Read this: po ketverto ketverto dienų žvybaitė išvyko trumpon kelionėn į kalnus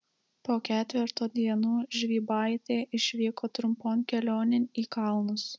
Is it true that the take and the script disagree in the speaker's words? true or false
true